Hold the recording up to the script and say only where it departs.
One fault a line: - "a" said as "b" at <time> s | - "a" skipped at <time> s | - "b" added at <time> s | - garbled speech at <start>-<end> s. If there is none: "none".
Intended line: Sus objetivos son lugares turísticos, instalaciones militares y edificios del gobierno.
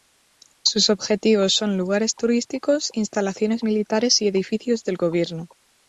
none